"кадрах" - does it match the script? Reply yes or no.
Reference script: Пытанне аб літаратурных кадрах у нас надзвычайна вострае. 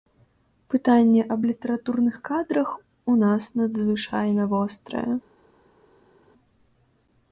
yes